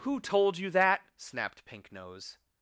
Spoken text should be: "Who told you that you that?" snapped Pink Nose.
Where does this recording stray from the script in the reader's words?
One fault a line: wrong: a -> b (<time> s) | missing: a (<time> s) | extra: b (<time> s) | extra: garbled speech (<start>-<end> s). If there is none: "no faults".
missing: you that (1.1 s)